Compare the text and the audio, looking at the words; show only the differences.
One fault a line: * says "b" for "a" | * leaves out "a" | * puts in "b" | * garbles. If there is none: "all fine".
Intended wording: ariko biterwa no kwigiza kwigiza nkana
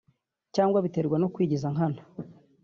* says "cyangwa" for "ariko"
* leaves out "kwigiza"